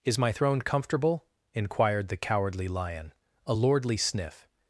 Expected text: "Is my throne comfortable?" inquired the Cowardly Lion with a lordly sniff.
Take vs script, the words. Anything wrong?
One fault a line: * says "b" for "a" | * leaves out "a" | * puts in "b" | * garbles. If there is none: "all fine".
* leaves out "with"